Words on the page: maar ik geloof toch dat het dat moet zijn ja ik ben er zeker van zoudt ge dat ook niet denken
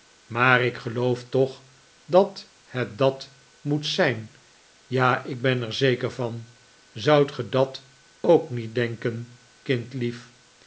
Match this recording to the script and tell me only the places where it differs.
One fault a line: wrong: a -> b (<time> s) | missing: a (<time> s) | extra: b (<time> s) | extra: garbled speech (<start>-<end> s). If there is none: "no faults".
no faults